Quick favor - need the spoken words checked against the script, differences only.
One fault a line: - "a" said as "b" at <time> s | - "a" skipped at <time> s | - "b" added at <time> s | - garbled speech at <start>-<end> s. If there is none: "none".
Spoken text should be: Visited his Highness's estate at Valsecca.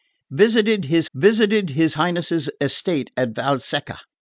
- "visited his" added at 1.1 s